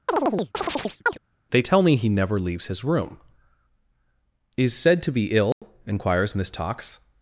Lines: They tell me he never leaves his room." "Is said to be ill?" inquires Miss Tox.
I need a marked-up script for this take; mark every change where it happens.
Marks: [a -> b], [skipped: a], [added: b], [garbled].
They tell me he never leaves his room." "Is said to be ill?" inquires Miss Tox.